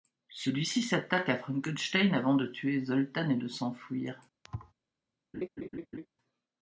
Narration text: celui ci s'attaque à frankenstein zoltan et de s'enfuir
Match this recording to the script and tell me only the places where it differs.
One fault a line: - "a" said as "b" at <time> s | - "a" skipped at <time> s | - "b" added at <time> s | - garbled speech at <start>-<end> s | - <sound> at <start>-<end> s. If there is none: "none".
- "avant de tuer" added at 2.1 s
- thud at 4.4-4.7 s
- laugh at 5.3-6.1 s